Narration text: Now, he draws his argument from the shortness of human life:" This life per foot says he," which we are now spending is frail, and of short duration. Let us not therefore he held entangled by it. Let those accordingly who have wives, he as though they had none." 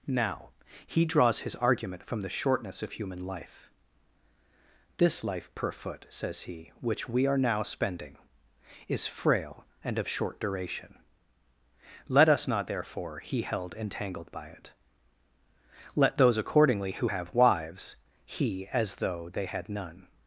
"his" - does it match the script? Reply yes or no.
yes